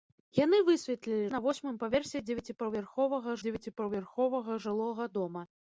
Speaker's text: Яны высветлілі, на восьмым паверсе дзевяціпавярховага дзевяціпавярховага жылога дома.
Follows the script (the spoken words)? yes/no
yes